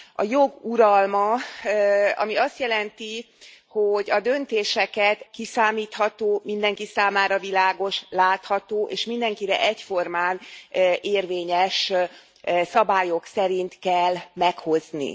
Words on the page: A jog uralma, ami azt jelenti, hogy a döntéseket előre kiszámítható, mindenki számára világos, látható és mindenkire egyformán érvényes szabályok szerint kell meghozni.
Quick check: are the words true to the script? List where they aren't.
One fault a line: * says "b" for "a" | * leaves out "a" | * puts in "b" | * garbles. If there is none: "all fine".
* leaves out "előre"